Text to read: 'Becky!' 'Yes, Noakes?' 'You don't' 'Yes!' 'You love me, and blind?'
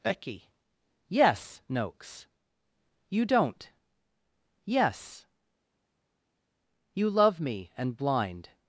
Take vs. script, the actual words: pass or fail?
pass